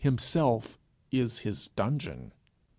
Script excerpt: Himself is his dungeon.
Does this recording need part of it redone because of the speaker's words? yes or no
no